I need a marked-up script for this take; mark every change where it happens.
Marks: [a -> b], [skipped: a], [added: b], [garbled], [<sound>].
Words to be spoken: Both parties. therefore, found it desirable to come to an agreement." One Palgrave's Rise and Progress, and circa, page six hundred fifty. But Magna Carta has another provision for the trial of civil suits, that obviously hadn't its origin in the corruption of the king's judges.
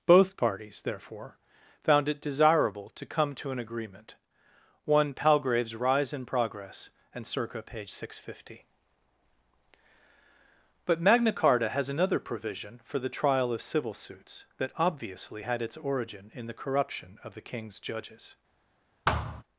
Both parties. therefore, found it desirable to come to an agreement." One Palgrave's Rise and Progress, and circa, page six hundred fifty. But Magna Carta has another provision for the trial of civil suits, that obviously [hadn't -> had] its origin in the corruption of the king's judges. [thud]